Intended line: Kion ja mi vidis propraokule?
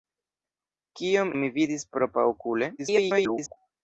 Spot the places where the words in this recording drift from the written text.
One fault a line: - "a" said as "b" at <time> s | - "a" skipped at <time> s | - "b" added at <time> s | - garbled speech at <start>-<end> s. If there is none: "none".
- "ja" skipped at 1.3 s
- garbled speech at 2.8-3.6 s